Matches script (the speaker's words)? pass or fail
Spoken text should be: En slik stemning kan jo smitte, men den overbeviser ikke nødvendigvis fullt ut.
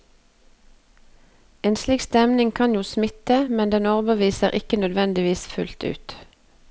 pass